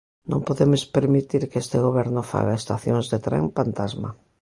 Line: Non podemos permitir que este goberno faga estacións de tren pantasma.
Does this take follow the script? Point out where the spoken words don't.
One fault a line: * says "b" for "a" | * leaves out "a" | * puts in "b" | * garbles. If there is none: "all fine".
all fine